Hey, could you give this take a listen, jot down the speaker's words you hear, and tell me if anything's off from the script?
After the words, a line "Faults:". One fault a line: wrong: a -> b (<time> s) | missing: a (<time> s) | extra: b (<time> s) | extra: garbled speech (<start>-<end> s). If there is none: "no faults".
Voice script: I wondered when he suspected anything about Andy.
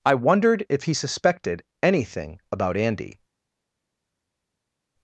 I wondered if he suspected anything about Andy.
Faults:
wrong: when -> if (0.7 s)